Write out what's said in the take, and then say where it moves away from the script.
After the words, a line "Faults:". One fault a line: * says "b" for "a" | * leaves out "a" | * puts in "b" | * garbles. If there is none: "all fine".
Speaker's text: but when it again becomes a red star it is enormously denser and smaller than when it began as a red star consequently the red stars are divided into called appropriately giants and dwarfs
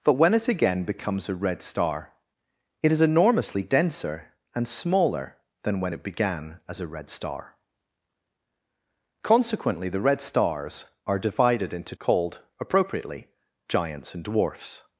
but when it again becomes a red star it is enormously denser and smaller than when it began as a red star consequently the red stars are divided into called appropriately giants and dwarfs
Faults:
all fine